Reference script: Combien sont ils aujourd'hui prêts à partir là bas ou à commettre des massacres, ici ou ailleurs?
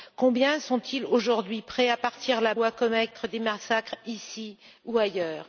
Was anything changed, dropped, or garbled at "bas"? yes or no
yes